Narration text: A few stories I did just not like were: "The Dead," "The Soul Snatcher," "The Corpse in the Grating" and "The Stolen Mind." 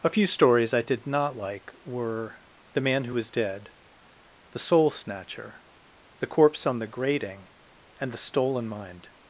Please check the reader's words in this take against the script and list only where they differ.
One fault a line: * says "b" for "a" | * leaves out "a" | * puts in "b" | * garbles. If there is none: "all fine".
* leaves out "just"
* puts in "Man Who Was"
* says "on" for "in"